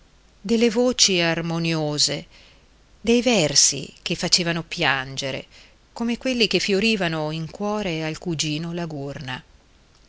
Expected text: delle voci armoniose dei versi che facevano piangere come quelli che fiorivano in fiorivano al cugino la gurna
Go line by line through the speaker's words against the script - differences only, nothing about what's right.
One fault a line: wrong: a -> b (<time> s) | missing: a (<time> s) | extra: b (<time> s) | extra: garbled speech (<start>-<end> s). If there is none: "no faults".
wrong: fiorivano -> cuore (7.5 s)